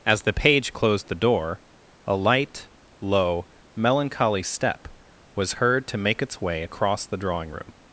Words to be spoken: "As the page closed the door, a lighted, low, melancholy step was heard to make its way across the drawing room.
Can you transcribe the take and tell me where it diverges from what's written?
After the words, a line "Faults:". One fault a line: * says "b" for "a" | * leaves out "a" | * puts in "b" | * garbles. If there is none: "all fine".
"As the page closed the door, a light, low, melancholy step was heard to make its way across the drawing room.
Faults:
* says "light" for "lighted"